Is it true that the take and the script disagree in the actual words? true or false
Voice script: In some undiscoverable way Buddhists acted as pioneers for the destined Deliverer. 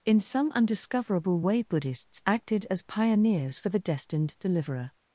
false